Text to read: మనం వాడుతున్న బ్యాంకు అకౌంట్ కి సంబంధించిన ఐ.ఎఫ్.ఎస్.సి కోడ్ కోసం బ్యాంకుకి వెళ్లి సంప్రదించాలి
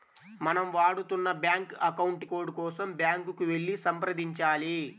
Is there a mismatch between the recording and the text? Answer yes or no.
yes